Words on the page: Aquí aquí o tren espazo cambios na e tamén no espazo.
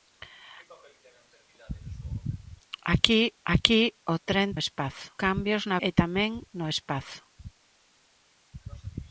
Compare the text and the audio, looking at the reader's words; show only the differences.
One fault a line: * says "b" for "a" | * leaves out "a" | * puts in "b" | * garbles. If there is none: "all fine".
all fine